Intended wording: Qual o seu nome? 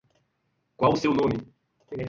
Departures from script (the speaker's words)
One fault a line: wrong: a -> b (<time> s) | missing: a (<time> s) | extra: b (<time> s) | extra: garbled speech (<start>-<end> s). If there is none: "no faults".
no faults